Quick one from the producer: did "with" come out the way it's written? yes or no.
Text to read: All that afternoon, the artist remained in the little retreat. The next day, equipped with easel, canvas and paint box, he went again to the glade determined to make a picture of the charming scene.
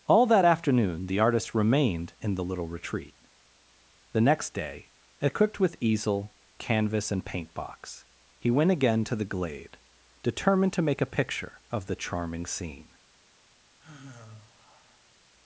yes